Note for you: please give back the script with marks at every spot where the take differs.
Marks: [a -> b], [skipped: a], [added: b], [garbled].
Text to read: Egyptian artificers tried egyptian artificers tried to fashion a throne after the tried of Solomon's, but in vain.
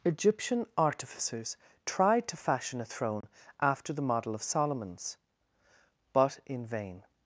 Egyptian artificers tried [skipped: egyptian artificers tried] to fashion a throne after the [tried -> model] of Solomon's, but in vain.